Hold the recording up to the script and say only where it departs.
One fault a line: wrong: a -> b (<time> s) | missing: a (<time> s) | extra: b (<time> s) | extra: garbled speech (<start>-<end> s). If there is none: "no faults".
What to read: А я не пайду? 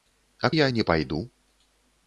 no faults